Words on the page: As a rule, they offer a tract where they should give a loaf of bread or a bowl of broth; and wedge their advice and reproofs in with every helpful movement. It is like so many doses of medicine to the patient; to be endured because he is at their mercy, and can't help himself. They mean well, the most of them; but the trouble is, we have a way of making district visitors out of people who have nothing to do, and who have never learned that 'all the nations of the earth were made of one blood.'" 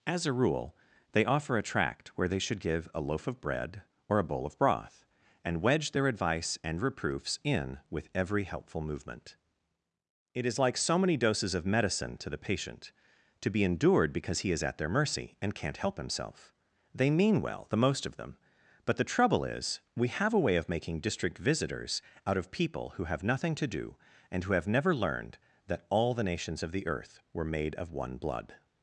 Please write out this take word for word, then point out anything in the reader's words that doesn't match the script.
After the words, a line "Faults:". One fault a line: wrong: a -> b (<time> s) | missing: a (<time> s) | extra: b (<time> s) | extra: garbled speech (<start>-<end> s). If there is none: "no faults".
As a rule, they offer a tract where they should give a loaf of bread or a bowl of broth; and wedge their advice and reproofs in with every helpful movement. It is like so many doses of medicine to the patient; to be endured because he is at their mercy, and can't help himself. They mean well, the most of them; but the trouble is, we have a way of making district visitors out of people who have nothing to do, and who have never learned that 'all the nations of the earth were made of one blood.'"
Faults:
no faults